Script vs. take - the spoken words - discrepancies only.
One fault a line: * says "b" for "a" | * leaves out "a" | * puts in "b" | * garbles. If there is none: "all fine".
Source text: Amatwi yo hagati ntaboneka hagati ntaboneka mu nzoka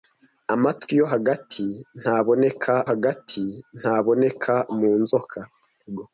all fine